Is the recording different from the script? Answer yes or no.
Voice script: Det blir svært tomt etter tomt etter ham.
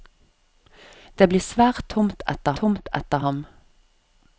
no